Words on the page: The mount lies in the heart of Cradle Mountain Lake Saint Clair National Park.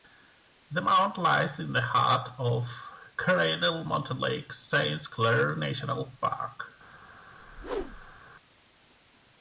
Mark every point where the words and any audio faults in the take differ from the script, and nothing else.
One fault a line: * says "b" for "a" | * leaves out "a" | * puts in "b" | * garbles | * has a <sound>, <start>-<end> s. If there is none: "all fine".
* has a whoosh, 7.4-8.2 s